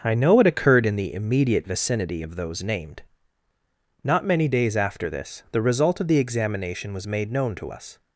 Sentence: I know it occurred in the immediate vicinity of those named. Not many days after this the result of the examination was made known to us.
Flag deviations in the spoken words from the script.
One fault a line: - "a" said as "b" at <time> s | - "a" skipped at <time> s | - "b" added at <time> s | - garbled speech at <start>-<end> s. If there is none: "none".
none